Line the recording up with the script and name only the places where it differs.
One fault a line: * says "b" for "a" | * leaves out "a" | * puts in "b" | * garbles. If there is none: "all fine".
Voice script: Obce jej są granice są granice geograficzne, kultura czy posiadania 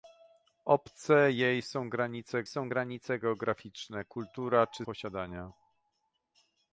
all fine